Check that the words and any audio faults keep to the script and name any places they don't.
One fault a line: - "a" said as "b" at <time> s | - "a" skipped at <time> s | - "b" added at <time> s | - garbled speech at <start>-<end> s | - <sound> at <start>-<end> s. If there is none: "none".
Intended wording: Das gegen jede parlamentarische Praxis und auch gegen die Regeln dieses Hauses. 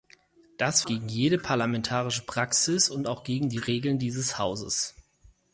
none